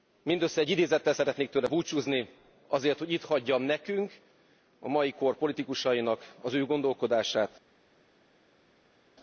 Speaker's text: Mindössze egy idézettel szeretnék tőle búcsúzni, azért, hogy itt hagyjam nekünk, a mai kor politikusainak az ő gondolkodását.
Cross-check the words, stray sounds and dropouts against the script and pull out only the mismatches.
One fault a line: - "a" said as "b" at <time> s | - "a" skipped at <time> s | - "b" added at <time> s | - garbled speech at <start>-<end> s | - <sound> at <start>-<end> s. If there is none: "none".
none